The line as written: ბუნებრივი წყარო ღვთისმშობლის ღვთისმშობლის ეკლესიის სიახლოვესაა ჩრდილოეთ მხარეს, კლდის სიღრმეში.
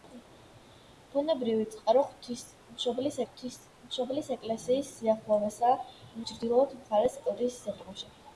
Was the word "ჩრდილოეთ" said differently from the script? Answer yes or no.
no